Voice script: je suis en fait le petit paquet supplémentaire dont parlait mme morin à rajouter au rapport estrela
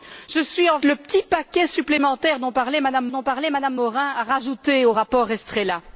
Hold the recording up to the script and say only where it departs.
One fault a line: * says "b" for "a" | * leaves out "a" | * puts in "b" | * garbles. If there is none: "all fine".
* leaves out "fait"
* puts in "dont parlait mme"